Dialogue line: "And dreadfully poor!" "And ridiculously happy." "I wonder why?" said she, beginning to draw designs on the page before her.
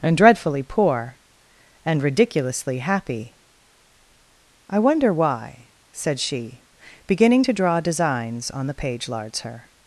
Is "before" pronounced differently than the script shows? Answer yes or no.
yes